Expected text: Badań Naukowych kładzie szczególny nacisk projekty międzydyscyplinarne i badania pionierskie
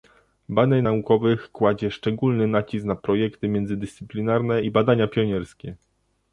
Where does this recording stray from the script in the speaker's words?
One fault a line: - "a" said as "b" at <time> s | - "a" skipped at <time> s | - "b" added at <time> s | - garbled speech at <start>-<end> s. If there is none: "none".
- "na" added at 2.9 s